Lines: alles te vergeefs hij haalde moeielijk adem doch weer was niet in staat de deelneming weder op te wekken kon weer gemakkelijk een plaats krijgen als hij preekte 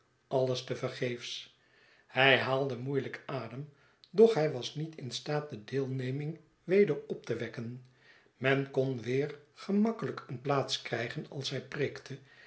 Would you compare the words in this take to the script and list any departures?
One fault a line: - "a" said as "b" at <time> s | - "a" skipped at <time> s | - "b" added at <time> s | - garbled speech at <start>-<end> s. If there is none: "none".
- "weer" said as "hij" at 4.3 s
- "men" added at 8.4 s